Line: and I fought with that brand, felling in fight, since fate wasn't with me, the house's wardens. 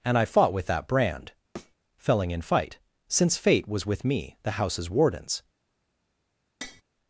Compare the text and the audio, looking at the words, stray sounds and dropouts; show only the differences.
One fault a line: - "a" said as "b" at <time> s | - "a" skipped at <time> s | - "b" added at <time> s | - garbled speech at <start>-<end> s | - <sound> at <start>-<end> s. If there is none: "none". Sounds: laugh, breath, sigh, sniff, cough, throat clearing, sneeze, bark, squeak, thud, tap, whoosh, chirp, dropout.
- thud at 1.6-1.8 s
- "wasn't" said as "was" at 3.7 s
- tap at 6.6-6.8 s